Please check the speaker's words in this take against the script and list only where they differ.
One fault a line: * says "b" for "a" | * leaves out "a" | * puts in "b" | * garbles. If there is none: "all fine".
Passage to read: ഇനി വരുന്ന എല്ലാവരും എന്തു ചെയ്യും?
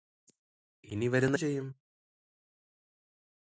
* leaves out "എല്ലാവരും എന്തു"